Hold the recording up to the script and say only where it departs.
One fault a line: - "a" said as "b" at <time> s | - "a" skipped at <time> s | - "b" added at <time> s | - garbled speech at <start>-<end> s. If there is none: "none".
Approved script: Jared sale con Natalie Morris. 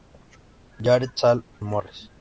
- "con Natalie" skipped at 1.4 s